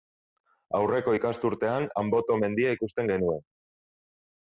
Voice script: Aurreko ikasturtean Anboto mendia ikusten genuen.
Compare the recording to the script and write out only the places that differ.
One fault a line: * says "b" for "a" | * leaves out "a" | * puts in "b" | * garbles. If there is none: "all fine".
all fine